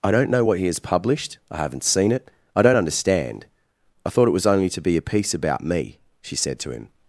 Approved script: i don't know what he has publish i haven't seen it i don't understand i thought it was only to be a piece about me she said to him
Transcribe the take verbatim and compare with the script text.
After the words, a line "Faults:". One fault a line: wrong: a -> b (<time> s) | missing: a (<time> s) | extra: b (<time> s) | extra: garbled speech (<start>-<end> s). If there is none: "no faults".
i don't know what he has published i haven't seen it i don't understand i thought it was only to be a piece about me she said to him
Faults:
wrong: publish -> published (0.8 s)